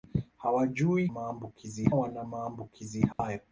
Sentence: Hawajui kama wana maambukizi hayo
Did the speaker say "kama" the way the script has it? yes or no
no